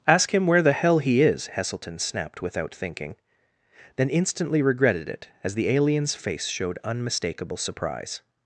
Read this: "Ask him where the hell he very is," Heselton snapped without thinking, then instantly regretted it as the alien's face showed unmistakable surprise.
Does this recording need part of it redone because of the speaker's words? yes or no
yes